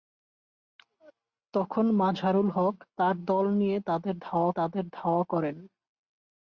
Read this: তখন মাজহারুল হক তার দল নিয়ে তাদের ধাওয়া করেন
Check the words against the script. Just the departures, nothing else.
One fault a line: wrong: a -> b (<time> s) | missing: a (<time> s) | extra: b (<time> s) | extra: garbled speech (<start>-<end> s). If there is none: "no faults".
extra: তাদের ধাওয়া (4.6 s)